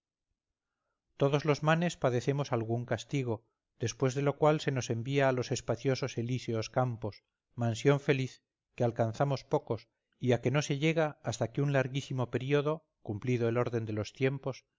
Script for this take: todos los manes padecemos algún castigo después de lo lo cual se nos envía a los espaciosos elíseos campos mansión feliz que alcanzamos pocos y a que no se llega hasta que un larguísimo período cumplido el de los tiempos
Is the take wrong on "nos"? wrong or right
right